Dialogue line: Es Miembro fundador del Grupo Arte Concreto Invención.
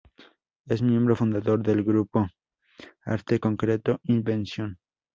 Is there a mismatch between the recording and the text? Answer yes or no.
no